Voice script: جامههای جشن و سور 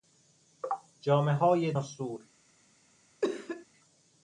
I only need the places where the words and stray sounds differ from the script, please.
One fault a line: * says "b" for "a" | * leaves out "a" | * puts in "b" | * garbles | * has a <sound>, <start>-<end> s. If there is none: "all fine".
* leaves out "جشن"
* has a cough, 3.2-3.7 s